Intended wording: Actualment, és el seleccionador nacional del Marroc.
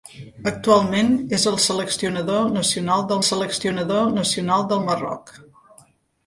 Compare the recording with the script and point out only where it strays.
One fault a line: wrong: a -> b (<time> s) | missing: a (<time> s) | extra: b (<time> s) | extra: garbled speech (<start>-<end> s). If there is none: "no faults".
extra: seleccionador nacional del (3.3 s)